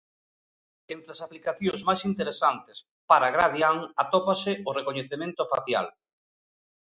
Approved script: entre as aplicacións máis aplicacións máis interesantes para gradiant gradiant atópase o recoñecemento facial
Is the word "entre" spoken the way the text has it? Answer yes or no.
yes